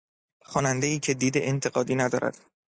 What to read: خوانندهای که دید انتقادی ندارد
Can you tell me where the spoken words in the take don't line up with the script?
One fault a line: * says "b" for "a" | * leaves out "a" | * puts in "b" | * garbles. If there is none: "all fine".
all fine